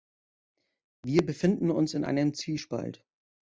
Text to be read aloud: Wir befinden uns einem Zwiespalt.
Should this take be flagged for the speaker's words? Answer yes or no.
yes